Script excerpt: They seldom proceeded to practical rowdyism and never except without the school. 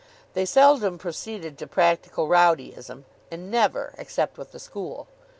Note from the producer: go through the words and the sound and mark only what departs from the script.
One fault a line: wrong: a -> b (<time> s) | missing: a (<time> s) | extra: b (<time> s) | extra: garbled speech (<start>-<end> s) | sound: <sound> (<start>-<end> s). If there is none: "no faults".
wrong: without -> with (4.4 s)